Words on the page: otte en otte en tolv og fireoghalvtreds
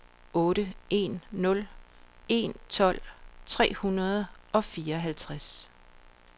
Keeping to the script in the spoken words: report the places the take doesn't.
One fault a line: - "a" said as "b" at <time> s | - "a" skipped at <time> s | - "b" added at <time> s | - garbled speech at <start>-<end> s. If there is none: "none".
- "otte" said as "nul" at 1.3 s
- "tre hundrede" added at 3.5 s